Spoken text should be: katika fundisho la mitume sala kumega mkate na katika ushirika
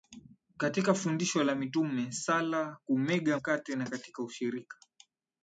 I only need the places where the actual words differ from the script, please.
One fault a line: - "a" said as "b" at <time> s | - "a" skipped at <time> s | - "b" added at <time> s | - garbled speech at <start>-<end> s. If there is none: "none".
none